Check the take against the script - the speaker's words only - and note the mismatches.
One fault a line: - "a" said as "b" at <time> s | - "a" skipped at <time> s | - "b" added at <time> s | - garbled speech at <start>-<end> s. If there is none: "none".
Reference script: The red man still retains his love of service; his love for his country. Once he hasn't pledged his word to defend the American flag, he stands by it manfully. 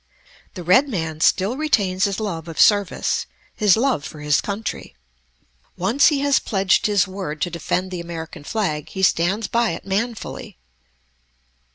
- "hasn't" said as "has" at 6.2 s